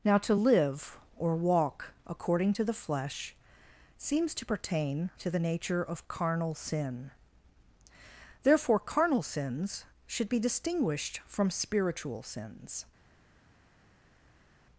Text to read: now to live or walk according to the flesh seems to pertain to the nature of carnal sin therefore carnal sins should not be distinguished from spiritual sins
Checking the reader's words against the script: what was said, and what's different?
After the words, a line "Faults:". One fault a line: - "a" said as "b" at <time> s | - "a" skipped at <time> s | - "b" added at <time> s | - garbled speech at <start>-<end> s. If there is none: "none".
now to live or walk according to the flesh seems to pertain to the nature of carnal sin therefore carnal sins should be distinguished from spiritual sins
Faults:
- "not" skipped at 10.3 s